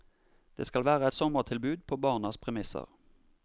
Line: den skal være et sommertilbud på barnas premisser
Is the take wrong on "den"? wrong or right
wrong